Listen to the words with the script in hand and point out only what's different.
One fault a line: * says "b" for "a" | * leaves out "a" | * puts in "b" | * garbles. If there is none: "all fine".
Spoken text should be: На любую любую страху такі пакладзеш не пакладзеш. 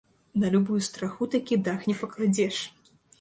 * leaves out "любую"
* says "дах" for "пакладзеш"